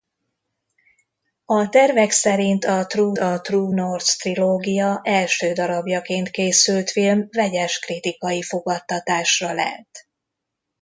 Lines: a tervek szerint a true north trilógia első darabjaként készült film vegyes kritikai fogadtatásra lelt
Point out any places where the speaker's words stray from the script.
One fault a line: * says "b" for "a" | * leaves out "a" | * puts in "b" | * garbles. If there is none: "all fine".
* puts in "a true"